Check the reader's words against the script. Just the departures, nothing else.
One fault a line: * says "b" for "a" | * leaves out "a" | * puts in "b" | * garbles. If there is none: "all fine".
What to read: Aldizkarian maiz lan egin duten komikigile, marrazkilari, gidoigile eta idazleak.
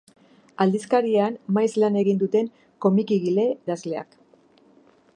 * leaves out "marrazkilari gidoigile eta"